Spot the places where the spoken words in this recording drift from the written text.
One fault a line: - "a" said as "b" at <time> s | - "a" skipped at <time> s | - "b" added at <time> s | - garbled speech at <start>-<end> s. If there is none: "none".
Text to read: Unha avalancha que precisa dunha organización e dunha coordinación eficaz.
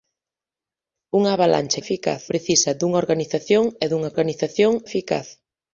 - "que" said as "eficaz" at 1.8 s
- "coordinación" said as "organización" at 4.1 s